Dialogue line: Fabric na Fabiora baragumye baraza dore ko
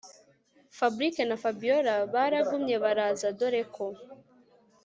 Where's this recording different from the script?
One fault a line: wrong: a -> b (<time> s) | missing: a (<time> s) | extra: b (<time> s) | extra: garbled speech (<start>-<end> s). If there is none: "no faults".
no faults